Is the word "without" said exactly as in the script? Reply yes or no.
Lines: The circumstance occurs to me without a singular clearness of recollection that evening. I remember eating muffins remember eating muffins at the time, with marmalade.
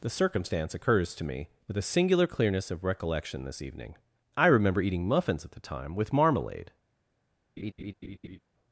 no